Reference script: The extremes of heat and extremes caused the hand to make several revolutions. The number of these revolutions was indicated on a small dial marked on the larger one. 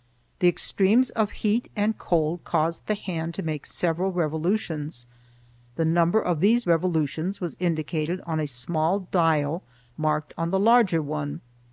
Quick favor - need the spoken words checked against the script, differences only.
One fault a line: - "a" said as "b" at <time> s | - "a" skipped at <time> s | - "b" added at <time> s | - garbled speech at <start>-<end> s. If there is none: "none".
- "extremes" said as "cold" at 1.9 s